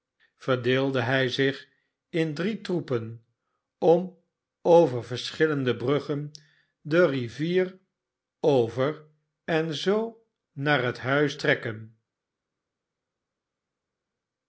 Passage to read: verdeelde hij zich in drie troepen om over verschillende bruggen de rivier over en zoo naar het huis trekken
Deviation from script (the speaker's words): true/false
false